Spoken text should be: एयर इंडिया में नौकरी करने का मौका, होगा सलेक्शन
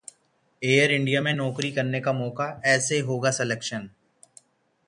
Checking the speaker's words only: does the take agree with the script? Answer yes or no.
no